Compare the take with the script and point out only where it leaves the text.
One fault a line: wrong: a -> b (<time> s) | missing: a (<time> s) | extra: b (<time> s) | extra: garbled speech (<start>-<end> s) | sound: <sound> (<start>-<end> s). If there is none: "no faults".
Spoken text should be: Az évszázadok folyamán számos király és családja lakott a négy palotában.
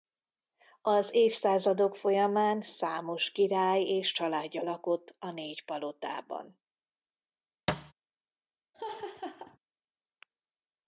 sound: thud (7.7-7.9 s)
sound: laugh (8.7-9.6 s)